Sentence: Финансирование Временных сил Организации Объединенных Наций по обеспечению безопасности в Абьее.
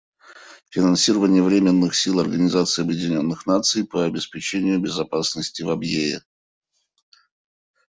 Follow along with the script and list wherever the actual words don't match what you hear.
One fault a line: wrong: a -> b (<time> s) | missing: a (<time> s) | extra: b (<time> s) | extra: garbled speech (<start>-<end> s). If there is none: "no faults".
no faults